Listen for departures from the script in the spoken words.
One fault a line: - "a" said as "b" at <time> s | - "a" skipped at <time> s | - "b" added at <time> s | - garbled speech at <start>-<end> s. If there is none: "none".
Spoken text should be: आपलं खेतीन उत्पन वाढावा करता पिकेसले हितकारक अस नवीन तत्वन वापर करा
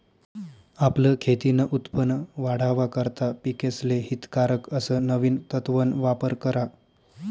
none